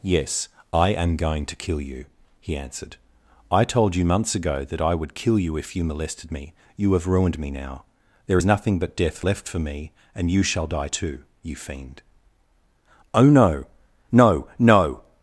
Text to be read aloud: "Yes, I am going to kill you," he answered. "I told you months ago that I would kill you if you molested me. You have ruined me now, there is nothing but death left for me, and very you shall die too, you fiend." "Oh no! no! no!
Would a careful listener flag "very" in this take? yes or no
yes